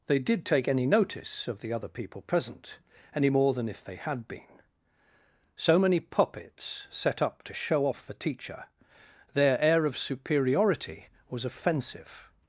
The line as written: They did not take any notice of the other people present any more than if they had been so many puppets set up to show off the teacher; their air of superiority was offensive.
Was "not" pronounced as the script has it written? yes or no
no